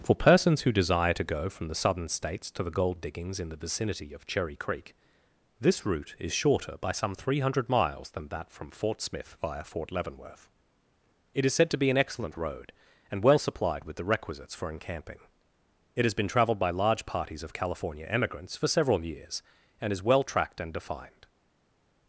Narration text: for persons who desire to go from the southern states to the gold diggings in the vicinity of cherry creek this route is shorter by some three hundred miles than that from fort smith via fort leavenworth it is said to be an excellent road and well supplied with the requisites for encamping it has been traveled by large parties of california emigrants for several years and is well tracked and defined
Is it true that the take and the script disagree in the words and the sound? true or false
false